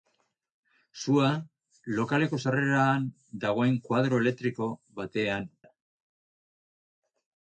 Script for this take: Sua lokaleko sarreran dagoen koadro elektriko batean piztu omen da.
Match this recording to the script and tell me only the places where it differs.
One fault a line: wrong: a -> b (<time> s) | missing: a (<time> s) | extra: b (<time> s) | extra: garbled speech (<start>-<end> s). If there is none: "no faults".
missing: piztu omen (5.5 s)